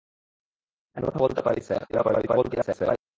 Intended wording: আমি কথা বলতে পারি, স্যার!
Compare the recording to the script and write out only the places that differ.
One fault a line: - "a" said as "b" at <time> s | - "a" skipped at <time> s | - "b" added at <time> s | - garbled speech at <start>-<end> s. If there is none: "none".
- garbled speech at 1.9-3.0 s